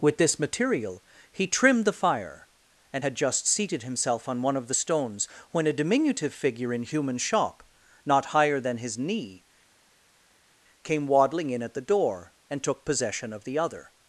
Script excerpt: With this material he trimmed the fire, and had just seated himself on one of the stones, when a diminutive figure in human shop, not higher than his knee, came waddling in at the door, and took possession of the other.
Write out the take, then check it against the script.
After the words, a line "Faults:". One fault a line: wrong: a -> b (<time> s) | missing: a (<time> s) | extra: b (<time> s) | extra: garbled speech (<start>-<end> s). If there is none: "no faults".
With this material he trimmed the fire, and had just seated himself on one of the stones, when a diminutive figure in human shop, not higher than his knee, came waddling in at the door, and took possession of the other.
Faults:
no faults